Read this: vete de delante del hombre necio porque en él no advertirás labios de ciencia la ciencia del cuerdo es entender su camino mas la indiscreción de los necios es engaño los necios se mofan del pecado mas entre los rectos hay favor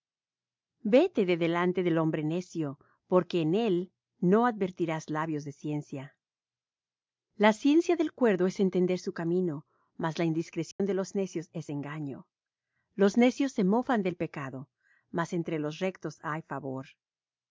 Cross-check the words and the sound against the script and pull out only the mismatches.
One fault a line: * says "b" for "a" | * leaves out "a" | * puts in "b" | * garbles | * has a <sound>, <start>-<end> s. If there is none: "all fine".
* has a dropout, 10.7-10.8 s